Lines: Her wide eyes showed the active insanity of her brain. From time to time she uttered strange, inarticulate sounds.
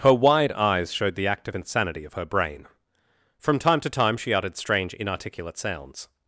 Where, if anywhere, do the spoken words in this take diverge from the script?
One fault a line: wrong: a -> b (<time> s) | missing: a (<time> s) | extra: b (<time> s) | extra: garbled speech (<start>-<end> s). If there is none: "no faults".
no faults